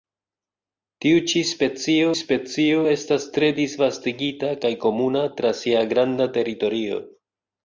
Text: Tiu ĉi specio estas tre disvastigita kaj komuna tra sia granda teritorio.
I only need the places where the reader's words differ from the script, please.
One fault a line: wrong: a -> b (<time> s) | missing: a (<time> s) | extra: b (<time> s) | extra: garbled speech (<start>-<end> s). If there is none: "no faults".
extra: specio (2.2 s)